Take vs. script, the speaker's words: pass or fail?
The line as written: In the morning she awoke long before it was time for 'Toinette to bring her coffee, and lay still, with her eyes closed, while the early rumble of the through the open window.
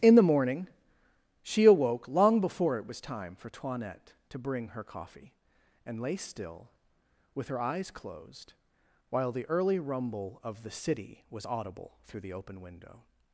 fail